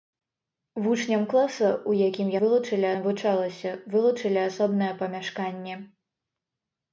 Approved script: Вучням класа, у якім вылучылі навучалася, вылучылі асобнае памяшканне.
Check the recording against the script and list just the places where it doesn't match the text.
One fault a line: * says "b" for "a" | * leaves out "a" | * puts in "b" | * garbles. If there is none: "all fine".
all fine